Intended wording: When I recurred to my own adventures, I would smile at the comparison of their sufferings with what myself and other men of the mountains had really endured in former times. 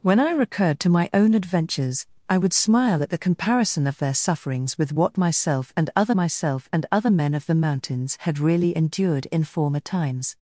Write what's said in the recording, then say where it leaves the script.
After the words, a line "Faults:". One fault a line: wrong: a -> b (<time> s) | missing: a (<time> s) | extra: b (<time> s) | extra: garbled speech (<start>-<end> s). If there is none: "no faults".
When I recurred to my own adventures, I would smile at the comparison of their sufferings with what myself and other myself and other men of the mountains had really endured in former times.
Faults:
extra: myself and other (6.1 s)